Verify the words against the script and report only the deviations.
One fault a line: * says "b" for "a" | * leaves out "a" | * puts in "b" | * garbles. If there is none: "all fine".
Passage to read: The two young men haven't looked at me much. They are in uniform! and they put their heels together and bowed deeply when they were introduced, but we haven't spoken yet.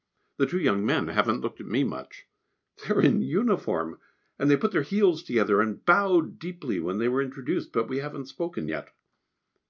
all fine